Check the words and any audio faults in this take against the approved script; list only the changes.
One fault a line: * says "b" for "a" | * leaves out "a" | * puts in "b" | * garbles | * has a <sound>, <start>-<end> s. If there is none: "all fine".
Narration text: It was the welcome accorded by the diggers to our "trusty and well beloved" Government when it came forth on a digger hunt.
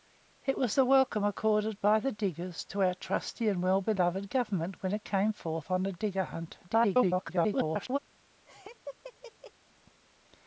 * garbles
* has a laugh, 8.5-9.5 s